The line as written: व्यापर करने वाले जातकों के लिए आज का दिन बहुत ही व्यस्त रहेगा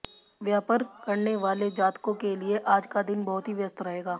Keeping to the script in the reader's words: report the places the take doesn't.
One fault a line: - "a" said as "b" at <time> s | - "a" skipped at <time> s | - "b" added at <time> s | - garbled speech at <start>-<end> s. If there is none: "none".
none